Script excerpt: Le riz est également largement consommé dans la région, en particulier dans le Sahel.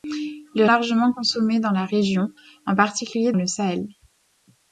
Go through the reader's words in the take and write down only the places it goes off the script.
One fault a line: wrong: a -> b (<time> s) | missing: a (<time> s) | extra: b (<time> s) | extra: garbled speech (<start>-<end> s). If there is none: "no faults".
missing: riz est également (0.7 s)
missing: dans (3.3 s)